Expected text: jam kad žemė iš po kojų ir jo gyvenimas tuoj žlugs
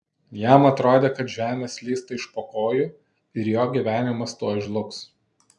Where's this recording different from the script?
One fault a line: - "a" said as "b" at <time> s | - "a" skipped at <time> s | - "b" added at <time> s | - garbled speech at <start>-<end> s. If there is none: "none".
- "atrodė" added at 0.7 s
- "slysta" added at 1.7 s